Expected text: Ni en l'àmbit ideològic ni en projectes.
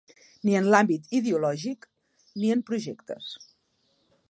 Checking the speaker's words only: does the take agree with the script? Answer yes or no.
yes